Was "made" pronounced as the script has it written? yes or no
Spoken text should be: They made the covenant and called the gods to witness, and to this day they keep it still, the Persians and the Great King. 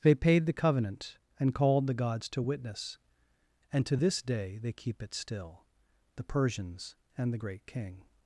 no